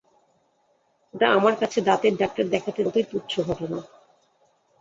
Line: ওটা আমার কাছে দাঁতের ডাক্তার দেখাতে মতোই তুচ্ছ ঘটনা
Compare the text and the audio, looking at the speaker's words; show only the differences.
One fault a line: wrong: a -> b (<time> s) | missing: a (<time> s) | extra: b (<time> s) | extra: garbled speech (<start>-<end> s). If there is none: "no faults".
no faults